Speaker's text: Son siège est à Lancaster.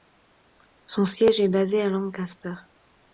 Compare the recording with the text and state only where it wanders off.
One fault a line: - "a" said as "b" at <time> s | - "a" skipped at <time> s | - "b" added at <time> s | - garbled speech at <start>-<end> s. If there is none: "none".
- "basé" added at 1.5 s